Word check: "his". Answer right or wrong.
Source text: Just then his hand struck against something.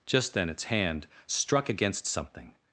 wrong